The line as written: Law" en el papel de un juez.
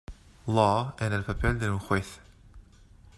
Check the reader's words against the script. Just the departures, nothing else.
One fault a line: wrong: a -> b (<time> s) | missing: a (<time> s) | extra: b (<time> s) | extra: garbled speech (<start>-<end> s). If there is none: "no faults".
no faults